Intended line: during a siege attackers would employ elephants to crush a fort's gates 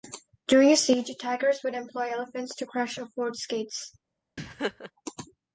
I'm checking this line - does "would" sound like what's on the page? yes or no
yes